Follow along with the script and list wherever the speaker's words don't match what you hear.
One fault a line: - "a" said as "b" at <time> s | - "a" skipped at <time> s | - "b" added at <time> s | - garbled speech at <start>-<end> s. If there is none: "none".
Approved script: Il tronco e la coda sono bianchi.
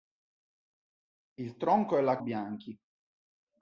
- "coda sono" skipped at 2.2 s